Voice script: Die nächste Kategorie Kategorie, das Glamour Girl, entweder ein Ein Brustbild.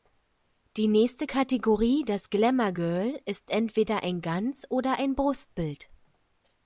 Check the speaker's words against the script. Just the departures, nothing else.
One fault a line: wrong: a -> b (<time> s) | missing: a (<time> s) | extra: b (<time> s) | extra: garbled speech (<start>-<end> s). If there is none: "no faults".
missing: Kategorie (2.0 s)
extra: ist (3.2 s)
extra: Ganz oder (4.2 s)